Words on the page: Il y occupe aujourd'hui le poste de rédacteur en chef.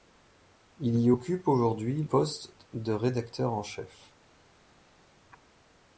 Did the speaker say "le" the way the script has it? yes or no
no